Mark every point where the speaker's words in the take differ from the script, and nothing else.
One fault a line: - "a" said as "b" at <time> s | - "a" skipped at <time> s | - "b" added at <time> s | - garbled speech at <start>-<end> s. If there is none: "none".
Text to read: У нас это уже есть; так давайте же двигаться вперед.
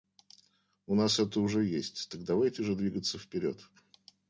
none